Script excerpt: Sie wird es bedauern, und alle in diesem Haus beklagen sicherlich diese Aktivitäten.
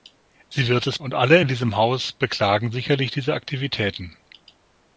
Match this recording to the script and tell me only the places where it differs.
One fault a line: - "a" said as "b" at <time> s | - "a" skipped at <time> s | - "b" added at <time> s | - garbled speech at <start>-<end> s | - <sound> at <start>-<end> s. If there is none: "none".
- "bedauern" skipped at 1.0 s